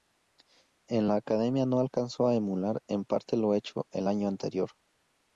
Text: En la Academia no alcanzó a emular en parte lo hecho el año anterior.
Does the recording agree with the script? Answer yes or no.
yes